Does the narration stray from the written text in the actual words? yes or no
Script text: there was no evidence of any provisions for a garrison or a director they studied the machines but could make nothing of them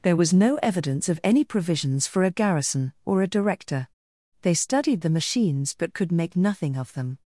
no